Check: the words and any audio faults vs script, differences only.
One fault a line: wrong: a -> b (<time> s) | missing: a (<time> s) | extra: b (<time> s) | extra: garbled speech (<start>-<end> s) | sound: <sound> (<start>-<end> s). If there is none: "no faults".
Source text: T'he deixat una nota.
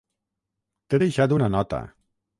no faults